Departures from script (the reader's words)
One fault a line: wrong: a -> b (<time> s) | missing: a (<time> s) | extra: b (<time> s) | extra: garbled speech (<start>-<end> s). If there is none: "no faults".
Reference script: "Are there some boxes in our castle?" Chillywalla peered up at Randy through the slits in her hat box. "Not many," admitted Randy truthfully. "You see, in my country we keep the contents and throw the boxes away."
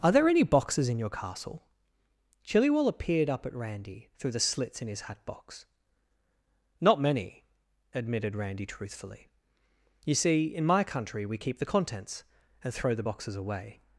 wrong: some -> any (0.3 s)
wrong: our -> your (1.0 s)
wrong: her -> his (4.9 s)